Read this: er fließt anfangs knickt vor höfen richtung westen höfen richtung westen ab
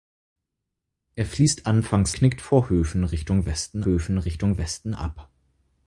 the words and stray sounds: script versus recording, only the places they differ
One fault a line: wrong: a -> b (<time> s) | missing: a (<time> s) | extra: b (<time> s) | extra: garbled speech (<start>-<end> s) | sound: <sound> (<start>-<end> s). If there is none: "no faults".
no faults